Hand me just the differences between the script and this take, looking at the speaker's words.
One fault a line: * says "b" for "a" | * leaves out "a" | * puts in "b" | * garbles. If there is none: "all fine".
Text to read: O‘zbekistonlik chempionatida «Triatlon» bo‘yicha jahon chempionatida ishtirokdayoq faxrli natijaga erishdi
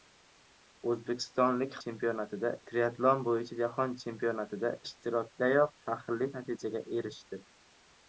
all fine